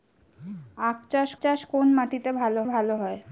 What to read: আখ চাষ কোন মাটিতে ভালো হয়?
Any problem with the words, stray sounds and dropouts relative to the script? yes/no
yes